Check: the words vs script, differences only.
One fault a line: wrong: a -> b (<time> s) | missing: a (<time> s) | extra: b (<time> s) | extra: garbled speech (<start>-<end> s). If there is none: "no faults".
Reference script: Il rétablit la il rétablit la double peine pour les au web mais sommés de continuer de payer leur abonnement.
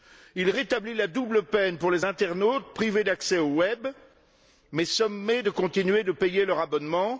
missing: il rétablit la (1.1 s)
extra: internautes privés d'accès (2.0 s)